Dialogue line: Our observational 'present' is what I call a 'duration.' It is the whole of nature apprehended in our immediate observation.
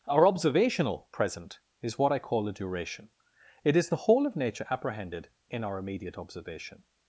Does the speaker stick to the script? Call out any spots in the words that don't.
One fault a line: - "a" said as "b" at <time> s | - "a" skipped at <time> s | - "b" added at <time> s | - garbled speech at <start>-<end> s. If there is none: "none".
none